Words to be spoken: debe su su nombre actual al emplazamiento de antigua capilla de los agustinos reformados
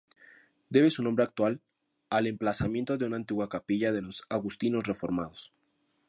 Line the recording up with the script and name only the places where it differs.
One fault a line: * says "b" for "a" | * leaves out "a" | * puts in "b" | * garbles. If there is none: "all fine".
* leaves out "su"
* puts in "una"